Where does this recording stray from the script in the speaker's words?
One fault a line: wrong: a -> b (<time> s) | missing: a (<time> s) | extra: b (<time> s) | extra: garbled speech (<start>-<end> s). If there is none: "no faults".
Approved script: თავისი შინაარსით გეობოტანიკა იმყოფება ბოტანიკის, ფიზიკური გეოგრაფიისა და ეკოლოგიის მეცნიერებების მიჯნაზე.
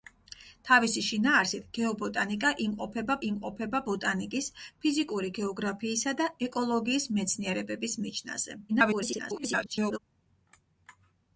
extra: იმყოფება (3.3 s)
extra: garbled speech (8.7-10.0 s)